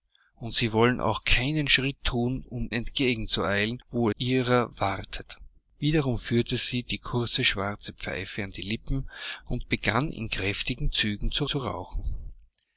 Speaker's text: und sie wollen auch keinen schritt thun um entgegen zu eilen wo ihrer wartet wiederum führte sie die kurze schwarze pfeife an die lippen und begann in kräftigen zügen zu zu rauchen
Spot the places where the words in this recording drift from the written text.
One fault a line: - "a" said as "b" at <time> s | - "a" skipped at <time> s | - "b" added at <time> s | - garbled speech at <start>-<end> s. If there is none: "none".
none